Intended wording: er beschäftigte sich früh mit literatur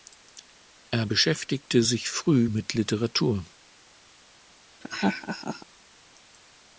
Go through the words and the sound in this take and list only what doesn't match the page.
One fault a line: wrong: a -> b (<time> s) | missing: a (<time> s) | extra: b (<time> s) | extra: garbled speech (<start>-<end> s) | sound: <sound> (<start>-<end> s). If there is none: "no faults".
sound: laugh (4.8-5.7 s)